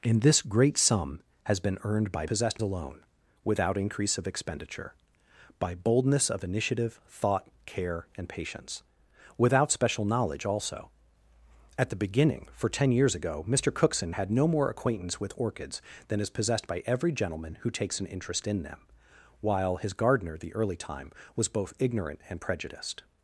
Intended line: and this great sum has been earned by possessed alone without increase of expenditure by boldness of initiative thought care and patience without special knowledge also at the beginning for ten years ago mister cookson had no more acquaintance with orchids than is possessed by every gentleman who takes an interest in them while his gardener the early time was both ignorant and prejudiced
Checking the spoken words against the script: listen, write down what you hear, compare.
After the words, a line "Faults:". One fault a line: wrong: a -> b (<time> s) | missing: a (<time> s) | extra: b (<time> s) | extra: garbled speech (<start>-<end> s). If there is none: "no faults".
and this great sum has been earned by possessed alone without increase of expenditure by boldness of initiative thought care and patience without special knowledge also at the beginning for ten years ago mister cookson had no more acquaintance with orchids than is possessed by every gentleman who takes an interest in them while his gardener the early time was both ignorant and prejudiced
Faults:
no faults